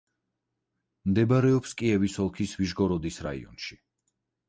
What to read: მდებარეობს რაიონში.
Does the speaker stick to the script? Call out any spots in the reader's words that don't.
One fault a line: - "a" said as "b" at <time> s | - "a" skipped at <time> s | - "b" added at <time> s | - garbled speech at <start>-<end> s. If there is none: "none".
- "კიევის ოლქის ვიშგოროდის" added at 1.8 s